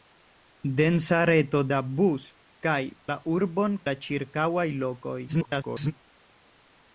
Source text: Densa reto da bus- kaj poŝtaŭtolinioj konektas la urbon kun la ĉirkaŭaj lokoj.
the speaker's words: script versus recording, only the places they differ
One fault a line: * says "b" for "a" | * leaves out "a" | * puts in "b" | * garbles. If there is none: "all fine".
* leaves out "poŝtaŭtolinioj konektas"
* leaves out "kun"
* garbles